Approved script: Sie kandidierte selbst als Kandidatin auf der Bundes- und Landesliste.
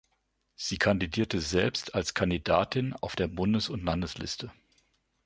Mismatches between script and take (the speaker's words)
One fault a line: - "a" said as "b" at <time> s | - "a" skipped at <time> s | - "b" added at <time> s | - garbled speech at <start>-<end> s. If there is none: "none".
none